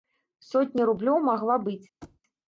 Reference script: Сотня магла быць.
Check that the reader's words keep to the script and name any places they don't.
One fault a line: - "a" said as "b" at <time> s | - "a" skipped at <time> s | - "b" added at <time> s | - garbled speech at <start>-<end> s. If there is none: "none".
- "рублёў" added at 0.9 s